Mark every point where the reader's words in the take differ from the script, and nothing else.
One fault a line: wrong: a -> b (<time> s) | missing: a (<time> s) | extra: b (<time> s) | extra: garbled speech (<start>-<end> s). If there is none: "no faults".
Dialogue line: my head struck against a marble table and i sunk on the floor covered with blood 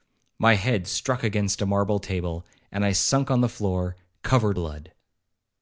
missing: with (4.6 s)